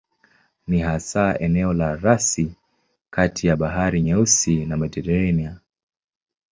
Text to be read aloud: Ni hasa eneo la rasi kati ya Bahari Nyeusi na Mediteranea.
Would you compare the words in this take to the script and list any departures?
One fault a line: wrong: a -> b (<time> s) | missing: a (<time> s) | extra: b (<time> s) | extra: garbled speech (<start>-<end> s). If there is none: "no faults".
no faults